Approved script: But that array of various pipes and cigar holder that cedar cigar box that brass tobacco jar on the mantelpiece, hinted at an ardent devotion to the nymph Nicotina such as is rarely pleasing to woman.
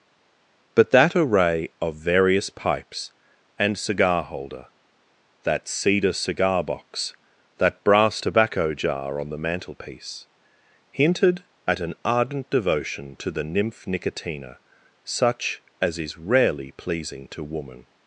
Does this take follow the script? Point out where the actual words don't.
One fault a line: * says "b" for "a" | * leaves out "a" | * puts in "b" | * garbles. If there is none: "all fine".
all fine